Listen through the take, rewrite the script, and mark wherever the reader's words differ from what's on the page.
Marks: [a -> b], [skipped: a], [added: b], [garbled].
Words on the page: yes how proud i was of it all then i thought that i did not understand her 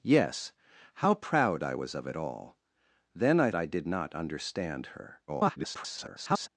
yes how proud i was of it all then i [skipped: thought that] i did not understand her [garbled]